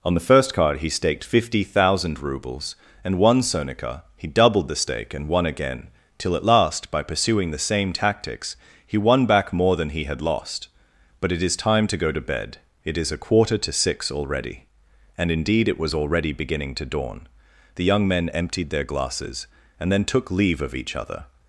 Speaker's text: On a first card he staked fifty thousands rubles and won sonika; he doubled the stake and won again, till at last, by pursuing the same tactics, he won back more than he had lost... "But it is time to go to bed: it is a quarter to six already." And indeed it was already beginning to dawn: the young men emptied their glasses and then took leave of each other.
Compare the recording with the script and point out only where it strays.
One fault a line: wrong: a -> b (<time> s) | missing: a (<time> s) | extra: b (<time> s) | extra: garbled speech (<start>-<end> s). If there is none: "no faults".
wrong: a -> the (0.1 s)
wrong: thousands -> thousand (1.6 s)